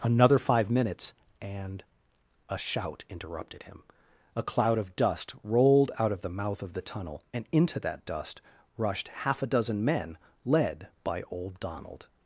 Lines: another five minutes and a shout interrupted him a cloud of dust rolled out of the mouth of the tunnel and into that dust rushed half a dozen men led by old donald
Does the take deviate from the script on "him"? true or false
false